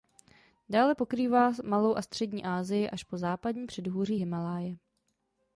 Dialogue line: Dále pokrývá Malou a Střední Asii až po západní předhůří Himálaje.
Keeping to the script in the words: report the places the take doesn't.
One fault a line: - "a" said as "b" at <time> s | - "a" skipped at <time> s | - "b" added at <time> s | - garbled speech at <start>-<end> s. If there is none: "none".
none